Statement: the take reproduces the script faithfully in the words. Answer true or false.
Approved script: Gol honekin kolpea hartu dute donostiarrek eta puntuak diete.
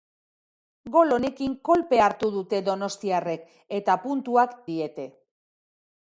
true